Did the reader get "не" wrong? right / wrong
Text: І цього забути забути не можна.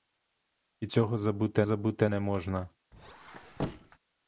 right